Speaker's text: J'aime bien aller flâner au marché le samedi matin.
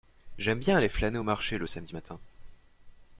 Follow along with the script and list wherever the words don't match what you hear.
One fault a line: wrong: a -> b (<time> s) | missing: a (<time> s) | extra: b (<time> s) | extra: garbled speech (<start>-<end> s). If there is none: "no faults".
no faults